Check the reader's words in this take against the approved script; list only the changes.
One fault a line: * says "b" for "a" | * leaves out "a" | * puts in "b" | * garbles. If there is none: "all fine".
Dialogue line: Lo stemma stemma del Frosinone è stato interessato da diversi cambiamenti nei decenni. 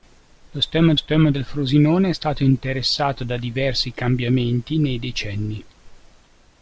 all fine